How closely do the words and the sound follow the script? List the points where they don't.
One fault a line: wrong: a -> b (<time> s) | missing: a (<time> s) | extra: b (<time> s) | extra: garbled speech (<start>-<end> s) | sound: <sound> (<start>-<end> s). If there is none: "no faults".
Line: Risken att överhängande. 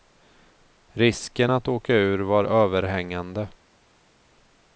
extra: åka ur var (1.7 s)